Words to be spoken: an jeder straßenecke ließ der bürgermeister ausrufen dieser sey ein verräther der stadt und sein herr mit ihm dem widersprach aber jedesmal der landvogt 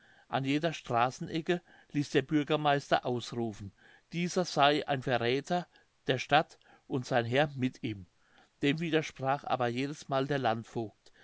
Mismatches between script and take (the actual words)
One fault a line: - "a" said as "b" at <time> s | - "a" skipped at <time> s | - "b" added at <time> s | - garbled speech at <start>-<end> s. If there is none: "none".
none